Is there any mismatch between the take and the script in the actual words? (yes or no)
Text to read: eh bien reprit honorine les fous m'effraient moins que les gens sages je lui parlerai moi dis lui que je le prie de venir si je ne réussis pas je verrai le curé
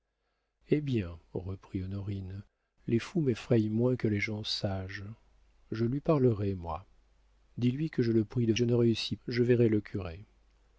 yes